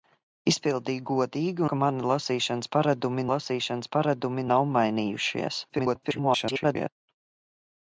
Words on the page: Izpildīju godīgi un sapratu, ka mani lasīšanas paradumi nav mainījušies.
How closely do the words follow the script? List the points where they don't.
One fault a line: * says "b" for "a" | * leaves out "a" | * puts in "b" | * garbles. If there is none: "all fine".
* says "ka mani lasīšanas paradumi" for "un sapratu ka mani"
* garbles